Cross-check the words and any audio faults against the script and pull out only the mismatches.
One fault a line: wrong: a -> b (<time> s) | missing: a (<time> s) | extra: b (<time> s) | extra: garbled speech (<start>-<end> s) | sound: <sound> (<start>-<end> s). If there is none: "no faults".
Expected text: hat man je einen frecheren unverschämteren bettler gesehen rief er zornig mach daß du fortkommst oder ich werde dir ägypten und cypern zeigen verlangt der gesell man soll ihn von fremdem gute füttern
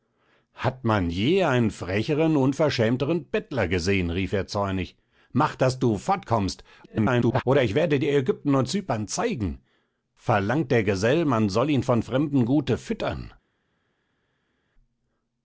extra: garbled speech (6.8-7.4 s)